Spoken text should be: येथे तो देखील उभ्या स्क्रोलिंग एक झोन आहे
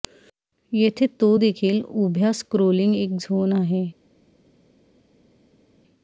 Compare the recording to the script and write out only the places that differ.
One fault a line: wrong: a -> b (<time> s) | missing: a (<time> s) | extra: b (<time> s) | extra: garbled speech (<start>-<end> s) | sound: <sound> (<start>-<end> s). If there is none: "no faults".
no faults